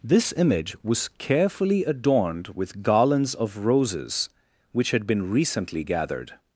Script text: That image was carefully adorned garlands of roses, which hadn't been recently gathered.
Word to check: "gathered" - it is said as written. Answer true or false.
true